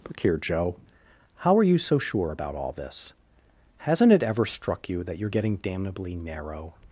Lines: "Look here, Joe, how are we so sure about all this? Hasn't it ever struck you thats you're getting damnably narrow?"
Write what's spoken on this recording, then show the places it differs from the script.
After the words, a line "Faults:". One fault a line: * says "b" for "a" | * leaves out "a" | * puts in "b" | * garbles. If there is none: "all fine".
"Look here, Joe, how are you so sure about all this? Hasn't it ever struck you that you're getting damnably narrow?"
Faults:
* says "you" for "we"
* says "that" for "thats"